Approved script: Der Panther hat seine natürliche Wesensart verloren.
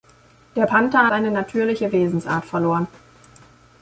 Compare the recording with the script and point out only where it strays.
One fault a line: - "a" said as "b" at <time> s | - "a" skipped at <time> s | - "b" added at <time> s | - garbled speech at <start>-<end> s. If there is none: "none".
- "hat" skipped at 1.1 s